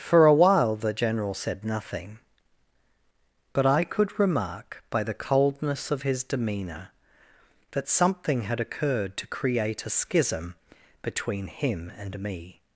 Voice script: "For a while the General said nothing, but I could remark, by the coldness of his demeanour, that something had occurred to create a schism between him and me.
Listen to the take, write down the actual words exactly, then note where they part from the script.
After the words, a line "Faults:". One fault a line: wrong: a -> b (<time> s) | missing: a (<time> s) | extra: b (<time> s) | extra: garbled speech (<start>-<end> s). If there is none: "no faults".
"For a while the General said nothing, but I could remark, by the coldness of his demeanour, that something had occurred to create a schism between him and me.
Faults:
no faults